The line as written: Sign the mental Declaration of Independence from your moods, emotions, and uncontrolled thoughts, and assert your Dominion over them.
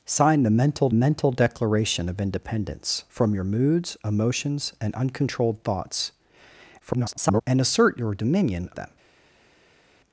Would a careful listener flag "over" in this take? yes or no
yes